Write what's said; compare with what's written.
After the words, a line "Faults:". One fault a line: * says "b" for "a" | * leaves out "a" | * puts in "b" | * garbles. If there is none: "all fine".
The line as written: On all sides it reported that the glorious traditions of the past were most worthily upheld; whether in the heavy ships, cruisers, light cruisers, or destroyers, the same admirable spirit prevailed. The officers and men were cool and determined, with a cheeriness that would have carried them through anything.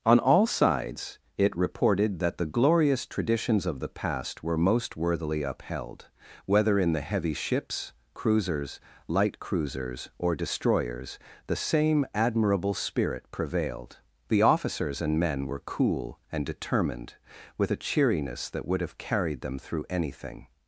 On all sides it reported that the glorious traditions of the past were most worthily upheld; whether in the heavy ships, cruisers, light cruisers, or destroyers, the same admirable spirit prevailed. The officers and men were cool and determined, with a cheeriness that would have carried them through anything.
Faults:
all fine